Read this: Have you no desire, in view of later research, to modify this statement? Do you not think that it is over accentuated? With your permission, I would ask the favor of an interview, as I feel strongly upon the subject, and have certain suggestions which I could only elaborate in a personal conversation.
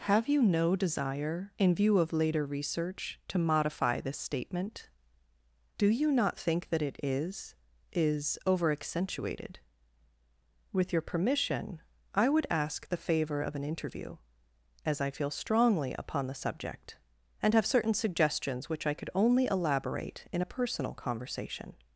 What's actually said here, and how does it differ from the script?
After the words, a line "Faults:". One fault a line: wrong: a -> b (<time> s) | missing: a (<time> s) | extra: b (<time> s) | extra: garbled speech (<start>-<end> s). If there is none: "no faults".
Have you no desire, in view of later research, to modify this statement? Do you not think that it is is over accentuated? With your permission, I would ask the favor of an interview, as I feel strongly upon the subject, and have certain suggestions which I could only elaborate in a personal conversation.
Faults:
extra: is (7.9 s)